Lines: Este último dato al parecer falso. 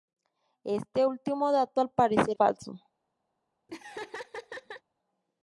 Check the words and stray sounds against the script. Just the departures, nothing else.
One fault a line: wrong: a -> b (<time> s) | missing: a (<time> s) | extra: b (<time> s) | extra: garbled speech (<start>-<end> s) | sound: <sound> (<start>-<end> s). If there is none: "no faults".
sound: laugh (3.7-4.8 s)